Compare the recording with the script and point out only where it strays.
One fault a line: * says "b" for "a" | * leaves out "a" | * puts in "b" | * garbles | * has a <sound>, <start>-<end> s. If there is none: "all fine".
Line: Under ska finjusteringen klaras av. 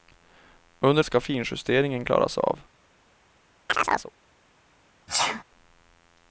* has a chirp, 3.7-4.1 s
* has a sneeze, 5.1-5.4 s